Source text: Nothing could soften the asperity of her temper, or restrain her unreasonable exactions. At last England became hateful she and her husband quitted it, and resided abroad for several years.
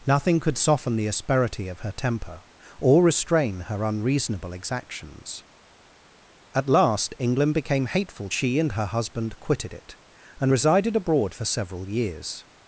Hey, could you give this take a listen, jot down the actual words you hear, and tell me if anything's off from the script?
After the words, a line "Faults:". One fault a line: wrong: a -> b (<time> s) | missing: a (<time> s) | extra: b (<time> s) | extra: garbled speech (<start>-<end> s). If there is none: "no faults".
Nothing could soften the asperity of her temper, or restrain her unreasonable exactions. At last England became hateful she and her husband quitted it, and resided abroad for several years.
Faults:
no faults